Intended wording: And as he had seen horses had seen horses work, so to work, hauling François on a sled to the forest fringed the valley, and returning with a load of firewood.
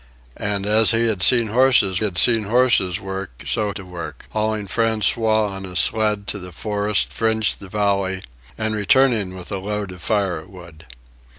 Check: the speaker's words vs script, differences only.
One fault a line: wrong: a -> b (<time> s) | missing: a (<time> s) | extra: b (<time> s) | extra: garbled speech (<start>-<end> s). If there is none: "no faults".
no faults